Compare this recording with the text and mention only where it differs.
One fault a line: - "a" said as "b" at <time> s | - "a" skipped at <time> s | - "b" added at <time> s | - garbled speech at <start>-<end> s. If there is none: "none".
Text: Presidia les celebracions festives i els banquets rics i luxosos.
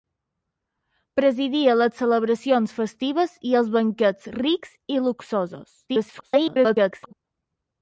- garbled speech at 5.9-7.1 s